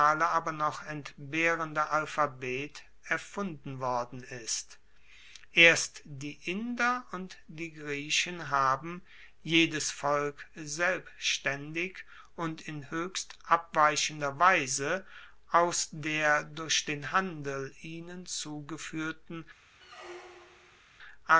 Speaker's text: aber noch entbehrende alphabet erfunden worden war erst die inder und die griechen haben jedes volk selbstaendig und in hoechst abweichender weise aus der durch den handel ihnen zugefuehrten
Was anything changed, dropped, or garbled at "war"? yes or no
yes